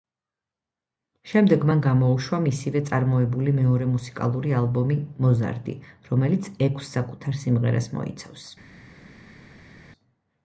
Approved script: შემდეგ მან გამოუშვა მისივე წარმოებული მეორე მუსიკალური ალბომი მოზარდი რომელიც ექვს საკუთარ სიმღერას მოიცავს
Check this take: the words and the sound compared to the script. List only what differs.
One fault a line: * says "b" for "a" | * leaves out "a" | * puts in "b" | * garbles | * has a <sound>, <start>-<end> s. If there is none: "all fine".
all fine